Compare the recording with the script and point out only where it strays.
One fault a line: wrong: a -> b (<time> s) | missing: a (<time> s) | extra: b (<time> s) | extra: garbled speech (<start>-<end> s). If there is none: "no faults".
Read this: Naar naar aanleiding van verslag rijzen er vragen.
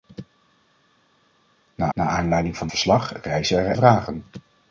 no faults